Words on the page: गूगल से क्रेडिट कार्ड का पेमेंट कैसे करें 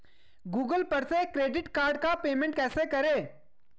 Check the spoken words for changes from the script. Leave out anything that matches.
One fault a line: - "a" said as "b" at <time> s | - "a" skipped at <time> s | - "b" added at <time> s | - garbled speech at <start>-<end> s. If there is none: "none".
- "पर" added at 0.8 s